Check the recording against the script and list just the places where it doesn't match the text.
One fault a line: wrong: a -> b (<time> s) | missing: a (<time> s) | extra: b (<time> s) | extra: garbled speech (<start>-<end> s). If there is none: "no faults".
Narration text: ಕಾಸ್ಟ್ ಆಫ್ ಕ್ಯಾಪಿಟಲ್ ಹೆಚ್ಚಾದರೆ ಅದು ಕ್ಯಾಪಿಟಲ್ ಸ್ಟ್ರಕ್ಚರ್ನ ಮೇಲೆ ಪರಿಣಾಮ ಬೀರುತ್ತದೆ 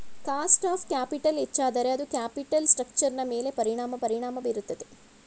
extra: ಪರಿಣಾಮ (4.0 s)